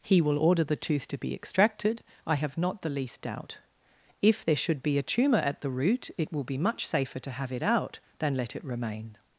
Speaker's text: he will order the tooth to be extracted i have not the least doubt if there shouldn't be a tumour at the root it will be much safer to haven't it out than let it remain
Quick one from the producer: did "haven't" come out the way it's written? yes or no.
no